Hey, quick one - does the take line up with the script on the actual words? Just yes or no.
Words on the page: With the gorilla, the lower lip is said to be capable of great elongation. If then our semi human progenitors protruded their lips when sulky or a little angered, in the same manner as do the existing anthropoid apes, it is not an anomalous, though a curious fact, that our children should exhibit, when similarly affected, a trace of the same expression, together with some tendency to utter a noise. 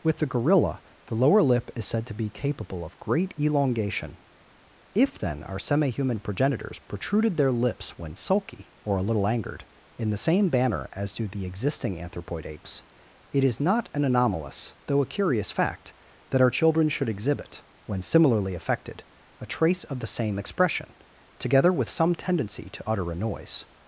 no